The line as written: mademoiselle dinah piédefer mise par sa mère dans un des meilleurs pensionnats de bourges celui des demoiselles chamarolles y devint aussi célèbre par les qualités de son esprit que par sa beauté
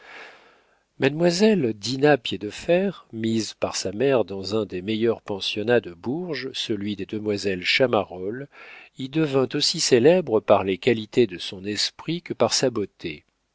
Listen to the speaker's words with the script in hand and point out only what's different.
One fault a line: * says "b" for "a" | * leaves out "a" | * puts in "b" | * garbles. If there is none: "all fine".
all fine